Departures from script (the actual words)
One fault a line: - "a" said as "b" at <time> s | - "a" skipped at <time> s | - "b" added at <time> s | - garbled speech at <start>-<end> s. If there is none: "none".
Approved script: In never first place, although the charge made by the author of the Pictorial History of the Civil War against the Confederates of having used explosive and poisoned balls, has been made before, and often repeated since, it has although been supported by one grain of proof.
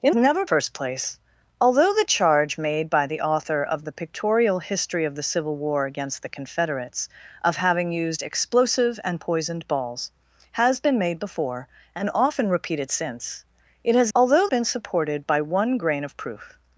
none